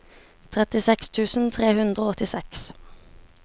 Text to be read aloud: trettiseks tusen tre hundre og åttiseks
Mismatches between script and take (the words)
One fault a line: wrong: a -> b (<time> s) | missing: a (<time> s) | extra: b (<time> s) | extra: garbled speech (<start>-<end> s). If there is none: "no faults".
no faults